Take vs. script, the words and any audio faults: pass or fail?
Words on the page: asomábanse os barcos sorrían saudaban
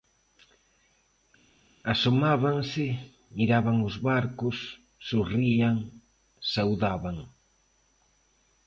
fail